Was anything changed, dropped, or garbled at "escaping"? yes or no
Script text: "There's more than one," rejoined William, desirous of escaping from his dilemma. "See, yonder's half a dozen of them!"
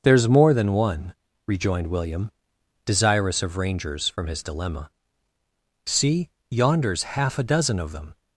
yes